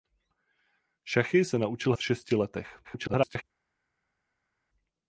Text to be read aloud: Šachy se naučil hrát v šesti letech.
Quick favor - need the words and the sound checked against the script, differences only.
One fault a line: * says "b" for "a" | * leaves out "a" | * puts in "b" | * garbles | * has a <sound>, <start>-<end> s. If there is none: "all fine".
* leaves out "hrát"
* garbles